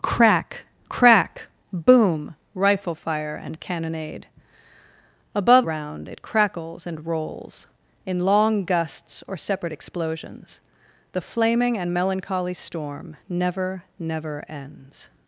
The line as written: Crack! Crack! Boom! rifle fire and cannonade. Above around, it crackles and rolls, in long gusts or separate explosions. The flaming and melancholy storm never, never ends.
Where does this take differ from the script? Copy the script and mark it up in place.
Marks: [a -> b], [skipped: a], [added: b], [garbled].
Crack! Crack! Boom! rifle fire and cannonade. Above around, it crackles and rolls, in long gusts or separate explosions. The flaming and melancholy storm never, never ends.